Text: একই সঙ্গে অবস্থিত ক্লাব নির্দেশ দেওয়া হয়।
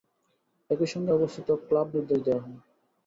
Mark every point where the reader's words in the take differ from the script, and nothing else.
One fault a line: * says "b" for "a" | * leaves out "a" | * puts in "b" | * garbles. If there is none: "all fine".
all fine